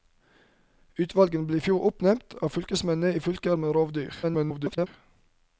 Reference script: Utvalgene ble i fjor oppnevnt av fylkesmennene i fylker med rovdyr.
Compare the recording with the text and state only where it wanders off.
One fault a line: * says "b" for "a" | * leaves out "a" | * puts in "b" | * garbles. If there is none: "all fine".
* garbles